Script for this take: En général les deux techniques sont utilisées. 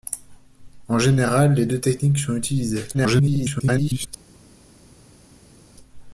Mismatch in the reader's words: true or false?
true